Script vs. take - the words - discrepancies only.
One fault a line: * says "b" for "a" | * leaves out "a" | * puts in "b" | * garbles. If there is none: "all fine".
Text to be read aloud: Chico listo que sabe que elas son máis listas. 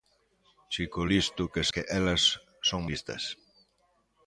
* leaves out "sabe"
* leaves out "máis"